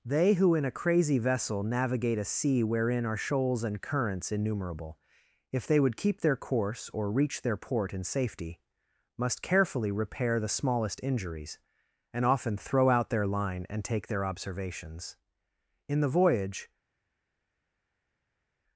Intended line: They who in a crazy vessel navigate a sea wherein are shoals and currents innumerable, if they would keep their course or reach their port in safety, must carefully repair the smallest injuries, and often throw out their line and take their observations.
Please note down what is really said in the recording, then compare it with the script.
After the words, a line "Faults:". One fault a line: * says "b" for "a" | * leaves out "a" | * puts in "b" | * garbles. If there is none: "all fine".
They who in a crazy vessel navigate a sea wherein are shoals and currents innumerable, if they would keep their course or reach their port in safety, must carefully repair the smallest injuries, and often throw out their line and take their observations. In the voyage
Faults:
* puts in "In the voyage"